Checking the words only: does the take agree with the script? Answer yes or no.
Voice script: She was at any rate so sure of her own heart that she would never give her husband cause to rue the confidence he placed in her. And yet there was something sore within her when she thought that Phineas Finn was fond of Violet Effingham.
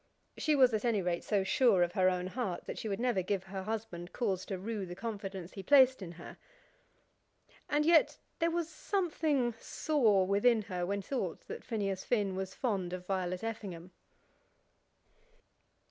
no